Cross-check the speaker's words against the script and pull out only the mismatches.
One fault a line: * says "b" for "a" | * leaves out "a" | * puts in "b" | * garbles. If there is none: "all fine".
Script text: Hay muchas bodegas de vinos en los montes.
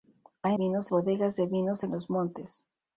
* says "vinos" for "muchas"